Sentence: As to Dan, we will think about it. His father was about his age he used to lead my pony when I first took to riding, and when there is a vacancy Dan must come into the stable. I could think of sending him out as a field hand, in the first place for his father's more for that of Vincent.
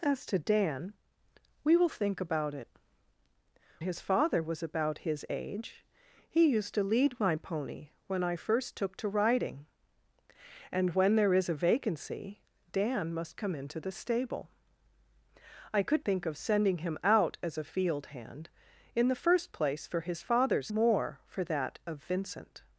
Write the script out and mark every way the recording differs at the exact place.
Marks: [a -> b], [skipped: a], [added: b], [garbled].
As to Dan, we will think about it. His father was about his age he used to lead my pony when I first took to riding, and when there is a vacancy Dan must come into the stable. I could think of sending him out as a field hand, in the first place for his father's more for that of Vincent.